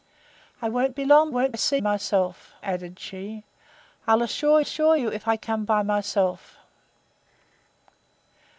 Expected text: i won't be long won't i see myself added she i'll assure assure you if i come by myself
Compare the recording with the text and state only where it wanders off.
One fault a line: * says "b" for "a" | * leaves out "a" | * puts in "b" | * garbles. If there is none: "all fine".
all fine